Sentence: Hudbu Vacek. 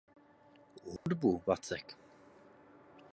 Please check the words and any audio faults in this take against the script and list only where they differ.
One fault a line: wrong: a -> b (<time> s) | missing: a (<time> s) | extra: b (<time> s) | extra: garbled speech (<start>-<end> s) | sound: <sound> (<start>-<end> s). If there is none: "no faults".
sound: dropout (1.0-1.1 s)